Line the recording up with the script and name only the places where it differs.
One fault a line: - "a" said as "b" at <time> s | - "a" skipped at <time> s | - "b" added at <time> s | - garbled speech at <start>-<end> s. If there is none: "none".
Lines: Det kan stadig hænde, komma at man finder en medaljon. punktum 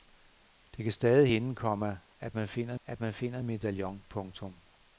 - "at man finder" added at 2.9 s